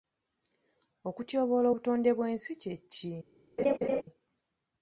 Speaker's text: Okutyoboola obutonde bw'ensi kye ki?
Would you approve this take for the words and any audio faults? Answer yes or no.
no